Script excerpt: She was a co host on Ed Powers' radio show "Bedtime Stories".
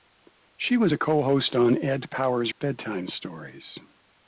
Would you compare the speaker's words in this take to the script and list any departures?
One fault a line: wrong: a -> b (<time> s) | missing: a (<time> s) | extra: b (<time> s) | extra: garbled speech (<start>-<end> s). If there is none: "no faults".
missing: radio show (2.5 s)